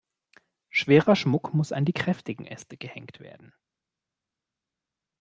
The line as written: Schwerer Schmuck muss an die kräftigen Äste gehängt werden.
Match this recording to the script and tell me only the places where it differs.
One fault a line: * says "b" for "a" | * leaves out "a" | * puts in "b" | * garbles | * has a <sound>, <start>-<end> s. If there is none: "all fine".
all fine